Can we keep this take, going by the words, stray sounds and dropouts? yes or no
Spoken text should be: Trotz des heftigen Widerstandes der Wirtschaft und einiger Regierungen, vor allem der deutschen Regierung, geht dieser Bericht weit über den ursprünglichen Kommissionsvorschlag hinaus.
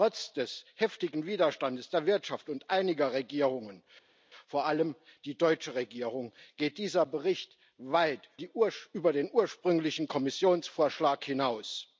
no